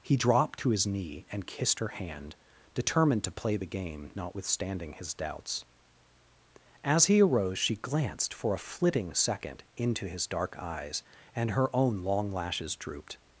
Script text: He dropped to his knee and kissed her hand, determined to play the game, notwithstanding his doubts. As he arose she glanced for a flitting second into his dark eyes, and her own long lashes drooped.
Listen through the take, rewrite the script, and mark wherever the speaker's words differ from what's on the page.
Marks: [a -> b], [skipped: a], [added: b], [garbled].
He dropped to his knee and kissed her hand, determined to play the game, notwithstanding his doubts. As he arose she glanced for a flitting second into his dark eyes, and her own long lashes drooped.